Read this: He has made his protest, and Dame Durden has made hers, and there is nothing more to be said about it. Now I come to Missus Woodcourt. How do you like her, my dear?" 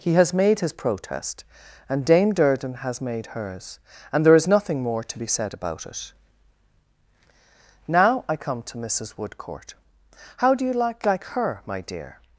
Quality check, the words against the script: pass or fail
fail